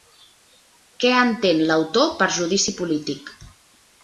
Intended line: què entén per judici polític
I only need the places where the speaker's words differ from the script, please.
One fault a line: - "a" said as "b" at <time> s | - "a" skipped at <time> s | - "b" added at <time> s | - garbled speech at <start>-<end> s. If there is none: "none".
- "l'autor" added at 1.7 s